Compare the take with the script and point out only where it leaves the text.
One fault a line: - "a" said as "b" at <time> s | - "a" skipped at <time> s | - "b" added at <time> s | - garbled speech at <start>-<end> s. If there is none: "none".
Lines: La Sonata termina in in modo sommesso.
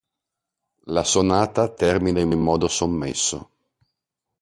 none